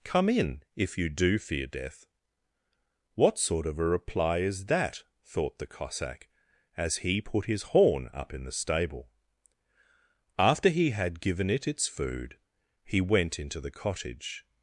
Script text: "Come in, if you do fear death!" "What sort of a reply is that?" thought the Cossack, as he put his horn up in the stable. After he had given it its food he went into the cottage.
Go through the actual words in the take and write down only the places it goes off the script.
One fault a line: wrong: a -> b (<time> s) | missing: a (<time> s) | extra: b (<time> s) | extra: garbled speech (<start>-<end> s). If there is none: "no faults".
no faults